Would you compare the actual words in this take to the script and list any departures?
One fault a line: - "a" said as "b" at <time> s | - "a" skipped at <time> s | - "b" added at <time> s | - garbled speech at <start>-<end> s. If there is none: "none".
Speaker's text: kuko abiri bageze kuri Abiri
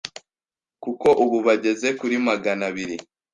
- "abiri" said as "ubu" at 1.2 s
- "Magana" added at 2.3 s